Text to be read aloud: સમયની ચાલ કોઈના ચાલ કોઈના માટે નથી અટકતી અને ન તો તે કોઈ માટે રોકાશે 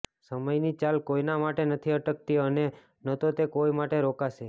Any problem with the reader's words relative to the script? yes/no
yes